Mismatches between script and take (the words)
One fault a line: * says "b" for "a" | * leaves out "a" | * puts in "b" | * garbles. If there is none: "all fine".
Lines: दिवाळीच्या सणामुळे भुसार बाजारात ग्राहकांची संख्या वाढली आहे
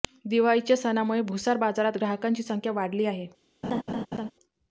all fine